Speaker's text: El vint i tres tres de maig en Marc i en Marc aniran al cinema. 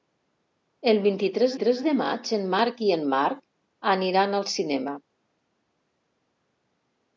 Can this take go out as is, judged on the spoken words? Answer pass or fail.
pass